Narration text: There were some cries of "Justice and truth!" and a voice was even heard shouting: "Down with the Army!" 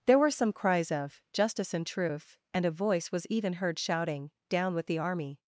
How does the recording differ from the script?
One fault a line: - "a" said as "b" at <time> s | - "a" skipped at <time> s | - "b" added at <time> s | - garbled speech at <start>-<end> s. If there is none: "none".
none